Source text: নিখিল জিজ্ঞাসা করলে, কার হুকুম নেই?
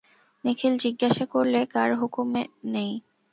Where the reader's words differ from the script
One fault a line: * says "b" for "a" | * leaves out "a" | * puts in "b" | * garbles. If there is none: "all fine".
all fine